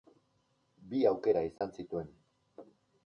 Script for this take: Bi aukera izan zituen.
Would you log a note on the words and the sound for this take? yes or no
yes